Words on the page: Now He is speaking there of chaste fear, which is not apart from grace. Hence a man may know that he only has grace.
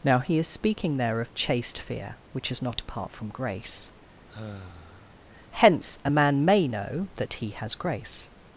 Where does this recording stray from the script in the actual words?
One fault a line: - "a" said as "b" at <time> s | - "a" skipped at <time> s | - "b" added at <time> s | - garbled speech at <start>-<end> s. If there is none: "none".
- "only" skipped at 7.5 s